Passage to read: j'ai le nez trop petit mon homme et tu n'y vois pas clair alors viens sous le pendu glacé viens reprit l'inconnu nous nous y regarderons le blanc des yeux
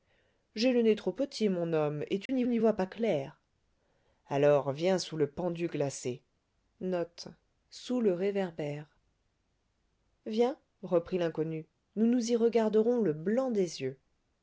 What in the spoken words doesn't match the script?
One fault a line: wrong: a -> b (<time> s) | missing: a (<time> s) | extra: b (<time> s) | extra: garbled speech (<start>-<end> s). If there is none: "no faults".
extra: n'y (2.5 s)